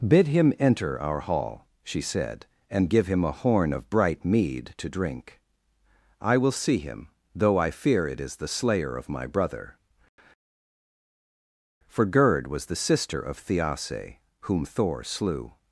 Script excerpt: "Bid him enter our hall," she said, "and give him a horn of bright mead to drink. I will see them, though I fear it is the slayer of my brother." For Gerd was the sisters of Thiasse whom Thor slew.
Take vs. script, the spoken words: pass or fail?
fail